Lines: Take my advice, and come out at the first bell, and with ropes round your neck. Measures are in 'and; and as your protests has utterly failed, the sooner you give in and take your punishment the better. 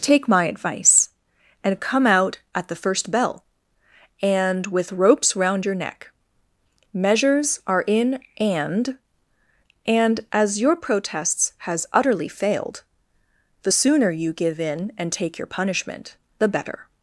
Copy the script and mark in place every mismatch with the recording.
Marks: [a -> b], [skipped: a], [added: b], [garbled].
Take my advice, and come out at the first bell, and with ropes round your neck. Measures are in 'and; and as your protests has utterly failed, the sooner you give in and take your punishment the better.